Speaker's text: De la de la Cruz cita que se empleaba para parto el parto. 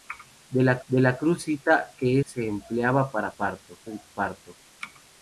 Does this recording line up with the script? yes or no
yes